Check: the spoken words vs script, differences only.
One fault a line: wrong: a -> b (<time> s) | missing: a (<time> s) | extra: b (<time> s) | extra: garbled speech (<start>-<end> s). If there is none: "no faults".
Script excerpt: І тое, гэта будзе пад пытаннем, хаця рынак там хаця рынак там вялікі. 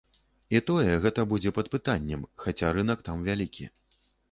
missing: хаця рынак там (3.2 s)